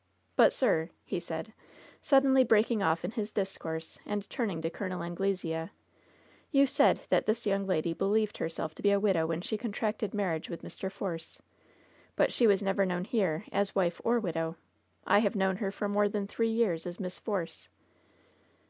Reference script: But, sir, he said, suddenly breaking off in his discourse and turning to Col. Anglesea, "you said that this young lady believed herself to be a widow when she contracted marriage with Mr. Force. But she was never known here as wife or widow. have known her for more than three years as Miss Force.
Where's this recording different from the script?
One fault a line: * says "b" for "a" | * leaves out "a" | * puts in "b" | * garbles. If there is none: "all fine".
* puts in "I"